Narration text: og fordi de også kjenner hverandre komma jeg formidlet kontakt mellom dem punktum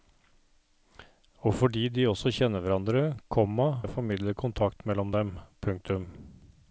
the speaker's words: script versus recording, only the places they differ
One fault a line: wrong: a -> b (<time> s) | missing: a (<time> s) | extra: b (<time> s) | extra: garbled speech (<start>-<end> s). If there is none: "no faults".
no faults